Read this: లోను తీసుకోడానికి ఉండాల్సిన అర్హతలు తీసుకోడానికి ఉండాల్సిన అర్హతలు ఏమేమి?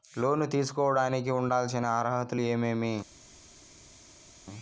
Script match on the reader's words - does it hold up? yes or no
no